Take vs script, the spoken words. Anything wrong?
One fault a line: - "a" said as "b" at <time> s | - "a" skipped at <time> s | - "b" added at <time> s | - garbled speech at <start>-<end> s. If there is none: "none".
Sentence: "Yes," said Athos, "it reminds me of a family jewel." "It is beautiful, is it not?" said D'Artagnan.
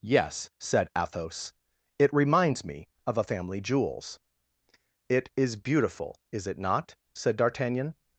- "jewel" said as "jewels" at 3.6 s